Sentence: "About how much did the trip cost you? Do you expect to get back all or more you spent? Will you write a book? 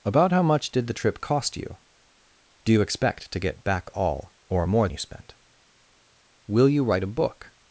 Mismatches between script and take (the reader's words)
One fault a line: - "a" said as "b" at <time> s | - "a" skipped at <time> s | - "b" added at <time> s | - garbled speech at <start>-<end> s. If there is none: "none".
none